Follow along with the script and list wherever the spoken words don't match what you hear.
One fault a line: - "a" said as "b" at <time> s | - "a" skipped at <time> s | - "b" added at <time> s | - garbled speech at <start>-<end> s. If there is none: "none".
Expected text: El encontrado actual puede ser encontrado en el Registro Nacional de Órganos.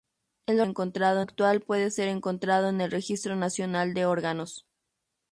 none